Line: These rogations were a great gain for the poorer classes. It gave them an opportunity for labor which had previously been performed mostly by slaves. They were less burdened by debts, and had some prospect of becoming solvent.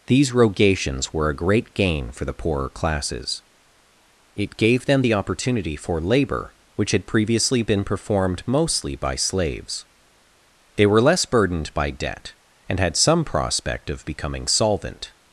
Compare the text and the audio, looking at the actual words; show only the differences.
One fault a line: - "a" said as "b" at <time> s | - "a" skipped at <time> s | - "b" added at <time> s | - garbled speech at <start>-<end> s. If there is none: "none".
- "an" said as "the" at 5.0 s
- "debts" said as "debt" at 11.9 s